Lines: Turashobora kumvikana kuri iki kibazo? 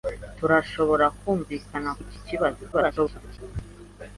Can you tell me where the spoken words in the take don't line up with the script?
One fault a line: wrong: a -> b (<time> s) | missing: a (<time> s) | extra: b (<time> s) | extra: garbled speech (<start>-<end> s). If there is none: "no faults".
missing: kuri (1.9 s)
extra: garbled speech (2.7-3.4 s)